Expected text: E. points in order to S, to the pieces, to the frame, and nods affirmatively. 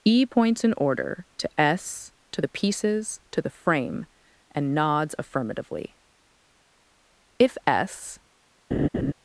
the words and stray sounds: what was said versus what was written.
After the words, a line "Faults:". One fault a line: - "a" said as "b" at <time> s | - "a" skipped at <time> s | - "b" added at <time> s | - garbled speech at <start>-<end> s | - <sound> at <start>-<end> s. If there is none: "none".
E. points in order to S, to the pieces, to the frame, and nods affirmatively. If S
Faults:
- "If S" added at 7.4 s
- laugh at 8.7-9.1 s